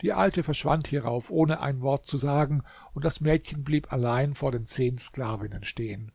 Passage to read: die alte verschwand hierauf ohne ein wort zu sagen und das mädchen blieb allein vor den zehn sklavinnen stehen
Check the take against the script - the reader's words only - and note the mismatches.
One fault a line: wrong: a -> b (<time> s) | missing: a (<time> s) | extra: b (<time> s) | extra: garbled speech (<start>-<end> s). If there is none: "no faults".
no faults